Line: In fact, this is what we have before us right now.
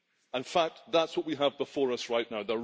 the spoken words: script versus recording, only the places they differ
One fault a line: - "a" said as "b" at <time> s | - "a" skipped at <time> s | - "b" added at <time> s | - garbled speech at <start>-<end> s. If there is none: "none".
- "this" said as "that" at 0.9 s